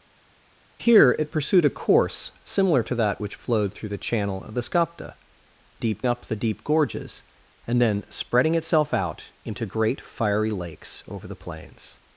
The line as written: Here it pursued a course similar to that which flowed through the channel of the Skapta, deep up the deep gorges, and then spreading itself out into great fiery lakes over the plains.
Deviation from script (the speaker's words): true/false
false